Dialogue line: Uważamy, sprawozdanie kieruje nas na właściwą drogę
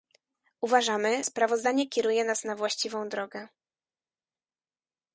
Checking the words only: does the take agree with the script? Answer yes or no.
yes